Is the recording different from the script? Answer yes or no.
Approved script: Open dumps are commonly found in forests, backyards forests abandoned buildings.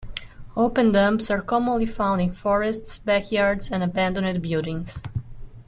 yes